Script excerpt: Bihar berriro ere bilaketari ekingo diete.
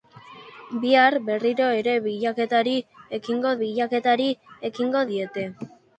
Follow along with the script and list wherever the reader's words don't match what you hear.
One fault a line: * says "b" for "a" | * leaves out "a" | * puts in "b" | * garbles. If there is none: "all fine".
* puts in "bilaketari ekingo"